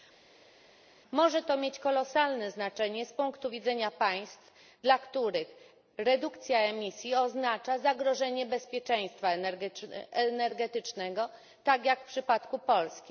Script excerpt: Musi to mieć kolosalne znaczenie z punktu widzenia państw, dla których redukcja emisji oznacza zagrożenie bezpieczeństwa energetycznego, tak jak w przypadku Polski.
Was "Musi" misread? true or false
true